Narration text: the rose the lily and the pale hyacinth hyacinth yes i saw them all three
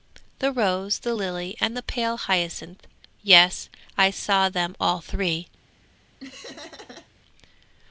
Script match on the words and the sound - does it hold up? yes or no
no